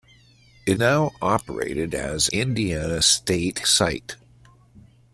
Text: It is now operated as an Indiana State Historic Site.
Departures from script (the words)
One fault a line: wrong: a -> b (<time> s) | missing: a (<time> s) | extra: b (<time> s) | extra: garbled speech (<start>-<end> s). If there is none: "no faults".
missing: is (0.8 s)
missing: an (2.3 s)
missing: Historic (3.6 s)